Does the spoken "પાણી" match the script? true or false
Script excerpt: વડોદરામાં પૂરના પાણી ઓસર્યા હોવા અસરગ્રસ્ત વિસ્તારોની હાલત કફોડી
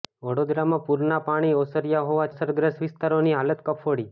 true